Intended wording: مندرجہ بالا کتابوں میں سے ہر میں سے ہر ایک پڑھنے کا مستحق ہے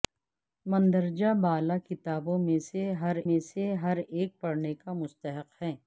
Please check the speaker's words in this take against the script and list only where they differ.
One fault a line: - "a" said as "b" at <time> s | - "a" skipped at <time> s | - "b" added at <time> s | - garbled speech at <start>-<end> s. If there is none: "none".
none